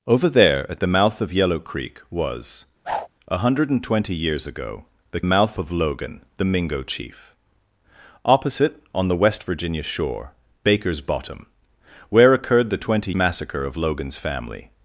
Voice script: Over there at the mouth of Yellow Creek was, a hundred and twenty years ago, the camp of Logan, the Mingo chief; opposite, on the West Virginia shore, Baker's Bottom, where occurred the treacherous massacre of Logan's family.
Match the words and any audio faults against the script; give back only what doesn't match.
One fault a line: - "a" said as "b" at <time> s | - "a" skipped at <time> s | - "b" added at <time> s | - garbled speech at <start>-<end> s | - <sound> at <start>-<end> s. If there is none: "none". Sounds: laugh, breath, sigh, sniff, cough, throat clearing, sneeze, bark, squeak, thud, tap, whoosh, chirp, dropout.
- whoosh at 2.8-3.1 s
- "camp" said as "mouth" at 5.2 s
- "treacherous" said as "twenty" at 12.8 s